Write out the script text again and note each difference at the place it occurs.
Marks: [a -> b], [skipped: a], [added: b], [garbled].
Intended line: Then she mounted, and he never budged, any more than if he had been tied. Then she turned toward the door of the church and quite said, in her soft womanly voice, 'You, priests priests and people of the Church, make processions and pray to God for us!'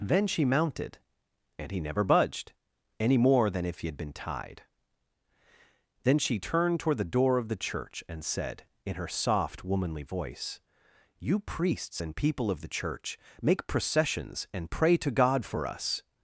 Then she mounted, and he never budged, any more than if he had been tied. Then she turned toward the door of the church and [skipped: quite] said, in her soft womanly voice, 'You, priests [skipped: priests] and people of the Church, make processions and pray to God for us!'